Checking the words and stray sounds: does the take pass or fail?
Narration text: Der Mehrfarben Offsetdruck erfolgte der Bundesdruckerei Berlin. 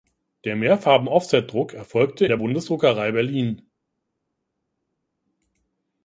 pass